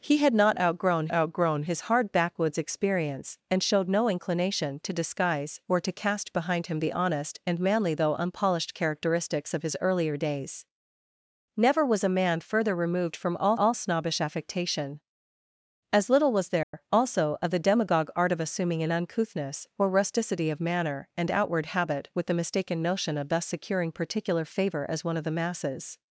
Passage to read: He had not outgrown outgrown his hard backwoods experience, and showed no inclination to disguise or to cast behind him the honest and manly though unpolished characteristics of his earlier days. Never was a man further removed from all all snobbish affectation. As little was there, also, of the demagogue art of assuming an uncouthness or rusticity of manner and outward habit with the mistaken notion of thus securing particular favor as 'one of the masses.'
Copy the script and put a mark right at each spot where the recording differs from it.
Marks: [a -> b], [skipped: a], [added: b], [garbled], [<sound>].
He had not outgrown outgrown his hard backwoods experience, and showed no inclination to disguise or to cast behind him the honest and manly though unpolished characteristics of his earlier days. Never was a man further removed from all all snobbish affectation. As little was there, [dropout] also, of the demagogue art of assuming an uncouthness or rusticity of manner and outward habit with the mistaken notion of thus securing particular favor as 'one of the masses.'